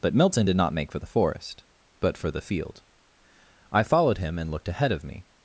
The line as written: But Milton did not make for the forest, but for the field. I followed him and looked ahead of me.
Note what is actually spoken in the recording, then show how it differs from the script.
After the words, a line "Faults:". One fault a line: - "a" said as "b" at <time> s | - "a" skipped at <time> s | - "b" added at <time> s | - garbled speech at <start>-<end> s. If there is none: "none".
But Milton did not make for the forest, but for the field. I followed him and looked ahead of me.
Faults:
none